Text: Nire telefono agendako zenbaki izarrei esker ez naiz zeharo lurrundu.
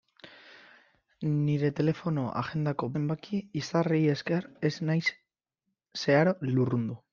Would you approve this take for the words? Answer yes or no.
yes